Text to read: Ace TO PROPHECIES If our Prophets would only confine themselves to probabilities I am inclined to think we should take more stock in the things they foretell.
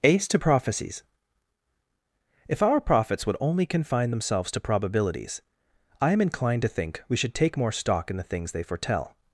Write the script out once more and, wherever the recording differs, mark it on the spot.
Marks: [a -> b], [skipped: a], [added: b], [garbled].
Ace TO PROPHECIES If our Prophets would only confine themselves to probabilities I am inclined to think we should take more stock in the things they foretell.